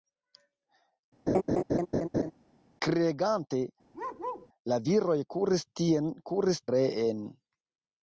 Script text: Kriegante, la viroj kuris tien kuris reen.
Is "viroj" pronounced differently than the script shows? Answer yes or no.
no